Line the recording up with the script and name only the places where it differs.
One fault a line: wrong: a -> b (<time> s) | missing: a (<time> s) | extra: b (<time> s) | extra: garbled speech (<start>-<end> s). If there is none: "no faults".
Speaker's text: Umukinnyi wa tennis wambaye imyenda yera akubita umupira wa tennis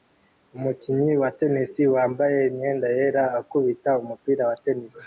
no faults